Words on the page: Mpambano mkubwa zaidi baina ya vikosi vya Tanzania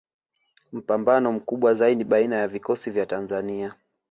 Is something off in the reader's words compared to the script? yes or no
no